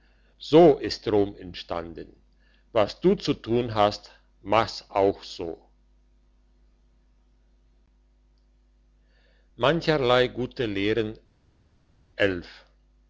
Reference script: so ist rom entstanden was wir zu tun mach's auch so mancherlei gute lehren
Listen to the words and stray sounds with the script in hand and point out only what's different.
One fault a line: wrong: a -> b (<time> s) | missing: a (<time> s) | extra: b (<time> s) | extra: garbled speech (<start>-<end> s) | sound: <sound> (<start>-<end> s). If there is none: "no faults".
wrong: wir -> du (3.0 s)
extra: hast (3.8 s)